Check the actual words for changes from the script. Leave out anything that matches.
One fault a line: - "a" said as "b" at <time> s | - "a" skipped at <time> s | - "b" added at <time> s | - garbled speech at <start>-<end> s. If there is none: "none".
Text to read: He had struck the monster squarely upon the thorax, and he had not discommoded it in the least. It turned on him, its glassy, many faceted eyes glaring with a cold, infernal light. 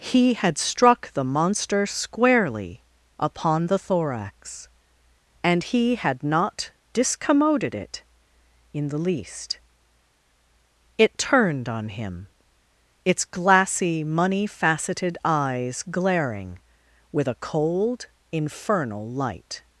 - "many" said as "money" at 14.0 s